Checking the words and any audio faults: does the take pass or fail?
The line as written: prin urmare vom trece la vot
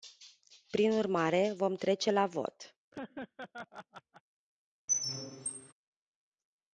fail